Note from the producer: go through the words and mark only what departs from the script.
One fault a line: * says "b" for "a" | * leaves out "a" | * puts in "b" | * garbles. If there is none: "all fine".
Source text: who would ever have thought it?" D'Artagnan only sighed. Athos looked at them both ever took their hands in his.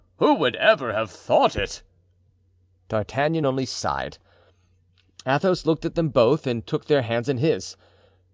* says "and" for "ever"